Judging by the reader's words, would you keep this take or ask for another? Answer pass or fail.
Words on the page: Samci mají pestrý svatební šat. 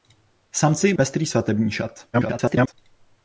fail